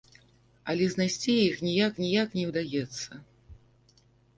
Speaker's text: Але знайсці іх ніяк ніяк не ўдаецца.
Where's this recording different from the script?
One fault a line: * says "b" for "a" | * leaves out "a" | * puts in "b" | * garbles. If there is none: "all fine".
all fine